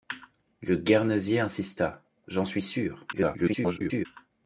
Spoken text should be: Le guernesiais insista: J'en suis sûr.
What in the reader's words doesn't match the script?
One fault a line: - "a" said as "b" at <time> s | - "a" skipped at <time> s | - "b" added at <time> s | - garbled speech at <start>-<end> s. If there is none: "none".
- garbled speech at 3.1-4.1 s